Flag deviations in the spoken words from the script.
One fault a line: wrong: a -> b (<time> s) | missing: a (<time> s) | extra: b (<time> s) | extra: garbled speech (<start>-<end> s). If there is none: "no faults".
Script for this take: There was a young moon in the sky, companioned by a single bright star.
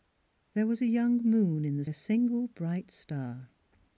missing: sky companioned by (1.9 s)